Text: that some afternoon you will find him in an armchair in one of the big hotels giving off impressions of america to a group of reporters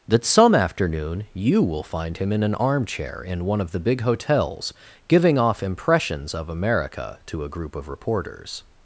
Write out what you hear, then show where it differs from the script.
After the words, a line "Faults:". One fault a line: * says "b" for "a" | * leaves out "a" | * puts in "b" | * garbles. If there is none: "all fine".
that some afternoon you will find him in an armchair in one of the big hotels giving off impressions of america to a group of reporters
Faults:
all fine